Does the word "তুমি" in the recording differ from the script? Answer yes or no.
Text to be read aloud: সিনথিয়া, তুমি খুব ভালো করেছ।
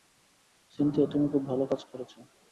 no